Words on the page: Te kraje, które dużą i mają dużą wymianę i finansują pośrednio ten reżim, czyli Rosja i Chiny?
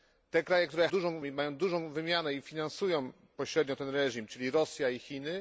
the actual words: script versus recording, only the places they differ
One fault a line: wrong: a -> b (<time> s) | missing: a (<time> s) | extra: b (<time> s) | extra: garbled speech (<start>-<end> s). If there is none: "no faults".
no faults